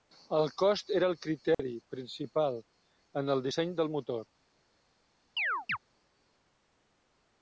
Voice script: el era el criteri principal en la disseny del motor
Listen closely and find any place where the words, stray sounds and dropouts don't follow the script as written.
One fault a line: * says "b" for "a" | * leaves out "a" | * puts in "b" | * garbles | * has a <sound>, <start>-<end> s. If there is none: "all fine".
* puts in "cost"
* has a dropout, 1.5-1.6 s
* says "el" for "la"
* has a chirp, 5.4-5.8 s